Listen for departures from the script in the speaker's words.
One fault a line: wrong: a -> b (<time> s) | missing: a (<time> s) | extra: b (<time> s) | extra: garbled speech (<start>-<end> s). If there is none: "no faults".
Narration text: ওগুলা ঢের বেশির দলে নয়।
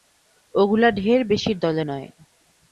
no faults